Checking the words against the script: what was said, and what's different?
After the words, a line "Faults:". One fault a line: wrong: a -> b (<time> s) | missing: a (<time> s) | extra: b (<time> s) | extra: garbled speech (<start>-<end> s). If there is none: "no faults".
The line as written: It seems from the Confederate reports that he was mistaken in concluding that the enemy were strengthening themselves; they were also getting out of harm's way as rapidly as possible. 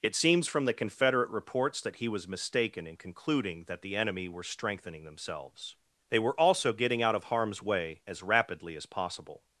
It seems from the Confederate reports that he was mistaken in concluding that the enemy were strengthening themselves; they were also getting out of harm's way as rapidly as possible.
Faults:
no faults